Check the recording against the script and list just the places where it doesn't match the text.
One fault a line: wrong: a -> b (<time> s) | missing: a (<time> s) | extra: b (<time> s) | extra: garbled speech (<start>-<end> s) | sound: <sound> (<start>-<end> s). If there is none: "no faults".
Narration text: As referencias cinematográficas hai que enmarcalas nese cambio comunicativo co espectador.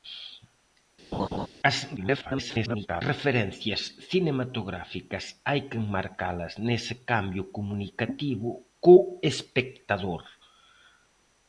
sound: laugh (1.1-1.5 s)
extra: garbled speech (2.0-3.0 s)